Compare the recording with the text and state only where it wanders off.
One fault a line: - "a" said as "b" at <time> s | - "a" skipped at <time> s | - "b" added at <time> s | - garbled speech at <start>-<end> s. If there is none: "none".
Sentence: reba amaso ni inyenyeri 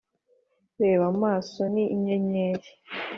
none